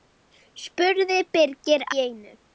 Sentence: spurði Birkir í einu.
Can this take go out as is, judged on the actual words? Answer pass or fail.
pass